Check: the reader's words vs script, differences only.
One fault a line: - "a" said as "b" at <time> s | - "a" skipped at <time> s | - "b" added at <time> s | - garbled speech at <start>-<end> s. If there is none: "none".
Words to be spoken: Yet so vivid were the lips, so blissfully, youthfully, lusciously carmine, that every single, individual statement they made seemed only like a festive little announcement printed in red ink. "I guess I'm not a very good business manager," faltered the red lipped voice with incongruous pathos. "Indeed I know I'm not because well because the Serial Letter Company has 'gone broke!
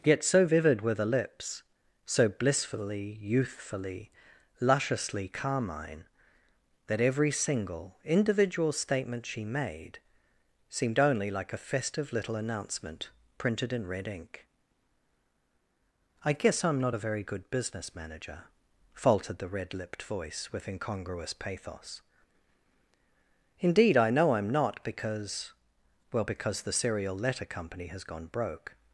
- "they" said as "she" at 9.2 s